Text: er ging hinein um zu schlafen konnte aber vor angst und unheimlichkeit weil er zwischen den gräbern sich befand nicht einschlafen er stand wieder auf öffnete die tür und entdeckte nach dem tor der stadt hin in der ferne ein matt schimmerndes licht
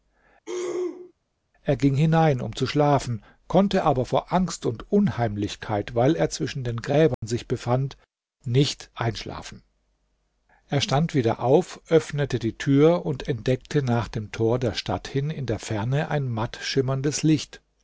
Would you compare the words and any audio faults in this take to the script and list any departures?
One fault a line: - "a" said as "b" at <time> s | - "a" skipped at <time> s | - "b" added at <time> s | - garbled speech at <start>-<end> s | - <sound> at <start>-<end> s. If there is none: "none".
- throat clearing at 0.5-1.1 s
- dropout at 7.1-7.2 s